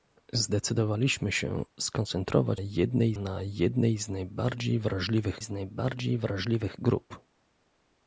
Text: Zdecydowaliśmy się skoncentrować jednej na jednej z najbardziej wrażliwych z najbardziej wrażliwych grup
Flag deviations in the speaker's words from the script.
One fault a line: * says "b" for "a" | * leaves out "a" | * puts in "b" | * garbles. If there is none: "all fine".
all fine